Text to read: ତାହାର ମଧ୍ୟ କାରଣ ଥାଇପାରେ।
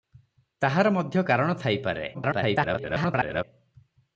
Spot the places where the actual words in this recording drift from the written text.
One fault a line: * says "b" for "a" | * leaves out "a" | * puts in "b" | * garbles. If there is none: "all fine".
* garbles